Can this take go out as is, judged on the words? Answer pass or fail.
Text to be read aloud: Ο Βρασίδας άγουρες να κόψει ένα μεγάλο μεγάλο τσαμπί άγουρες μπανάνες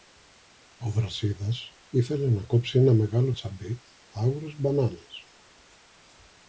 fail